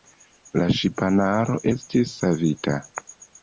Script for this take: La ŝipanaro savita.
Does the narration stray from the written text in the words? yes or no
yes